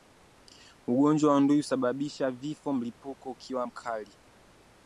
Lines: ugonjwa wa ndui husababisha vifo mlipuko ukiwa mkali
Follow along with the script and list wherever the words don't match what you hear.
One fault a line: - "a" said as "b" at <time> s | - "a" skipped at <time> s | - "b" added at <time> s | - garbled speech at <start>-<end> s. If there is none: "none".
none